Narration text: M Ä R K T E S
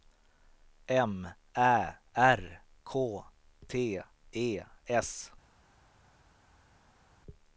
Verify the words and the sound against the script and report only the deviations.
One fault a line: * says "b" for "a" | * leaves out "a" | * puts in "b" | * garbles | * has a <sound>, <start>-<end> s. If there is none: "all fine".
all fine